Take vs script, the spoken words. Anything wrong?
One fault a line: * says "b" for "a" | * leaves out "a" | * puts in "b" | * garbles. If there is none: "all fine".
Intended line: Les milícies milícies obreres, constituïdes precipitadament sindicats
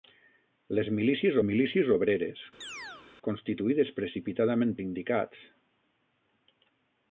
all fine